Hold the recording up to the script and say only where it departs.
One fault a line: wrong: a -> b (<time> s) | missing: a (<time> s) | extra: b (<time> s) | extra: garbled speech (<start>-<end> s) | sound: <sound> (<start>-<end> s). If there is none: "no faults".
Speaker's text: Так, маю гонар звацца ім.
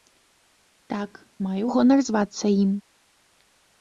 no faults